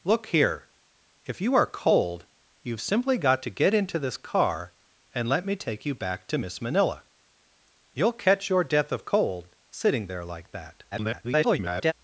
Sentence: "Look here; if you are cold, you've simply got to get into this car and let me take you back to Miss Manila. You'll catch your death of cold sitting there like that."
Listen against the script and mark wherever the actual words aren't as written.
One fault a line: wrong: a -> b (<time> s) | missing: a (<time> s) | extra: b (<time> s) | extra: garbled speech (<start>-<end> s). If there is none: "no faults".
extra: garbled speech (10.9-11.9 s)